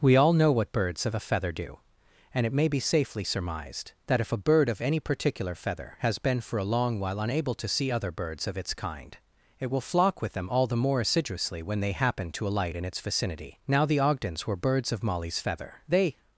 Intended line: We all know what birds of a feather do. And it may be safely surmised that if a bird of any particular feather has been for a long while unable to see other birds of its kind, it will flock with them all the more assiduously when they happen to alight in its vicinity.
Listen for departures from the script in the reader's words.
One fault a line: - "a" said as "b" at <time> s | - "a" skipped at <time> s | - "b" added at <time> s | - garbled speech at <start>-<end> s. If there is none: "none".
- "Now the Ogdens were birds of Molly's feather They" added at 13.7 s